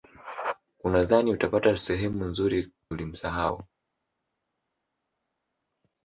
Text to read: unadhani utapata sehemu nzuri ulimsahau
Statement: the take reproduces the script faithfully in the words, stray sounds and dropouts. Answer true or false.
true